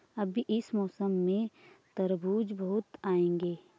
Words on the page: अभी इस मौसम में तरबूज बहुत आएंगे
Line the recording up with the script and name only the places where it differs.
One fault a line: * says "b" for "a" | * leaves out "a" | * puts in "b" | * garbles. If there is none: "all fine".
all fine